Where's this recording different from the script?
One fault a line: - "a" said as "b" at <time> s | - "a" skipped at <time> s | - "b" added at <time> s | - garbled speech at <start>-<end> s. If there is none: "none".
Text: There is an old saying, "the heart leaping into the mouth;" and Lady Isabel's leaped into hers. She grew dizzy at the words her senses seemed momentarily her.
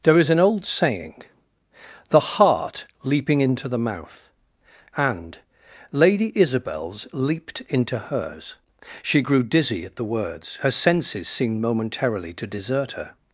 - "to desert" added at 12.3 s